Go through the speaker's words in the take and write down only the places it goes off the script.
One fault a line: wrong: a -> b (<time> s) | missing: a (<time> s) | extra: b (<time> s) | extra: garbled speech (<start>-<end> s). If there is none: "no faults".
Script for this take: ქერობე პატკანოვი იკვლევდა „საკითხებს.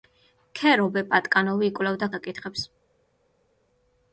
no faults